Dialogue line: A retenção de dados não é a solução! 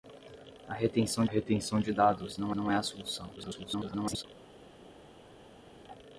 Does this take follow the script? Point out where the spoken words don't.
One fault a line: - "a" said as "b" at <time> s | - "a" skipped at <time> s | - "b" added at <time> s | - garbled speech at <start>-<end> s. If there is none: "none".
- "retenção" added at 1.2 s
- "não" added at 2.5 s
- garbled speech at 3.4-4.2 s